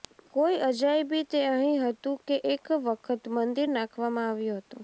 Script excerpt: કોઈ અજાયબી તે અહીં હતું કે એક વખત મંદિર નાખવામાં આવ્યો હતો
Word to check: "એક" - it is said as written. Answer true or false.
true